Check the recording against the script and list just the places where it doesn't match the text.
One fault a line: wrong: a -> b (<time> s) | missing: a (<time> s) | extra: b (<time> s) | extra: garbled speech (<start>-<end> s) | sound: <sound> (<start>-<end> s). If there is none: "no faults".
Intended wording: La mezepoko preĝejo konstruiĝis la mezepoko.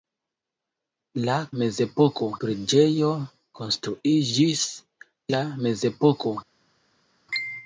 no faults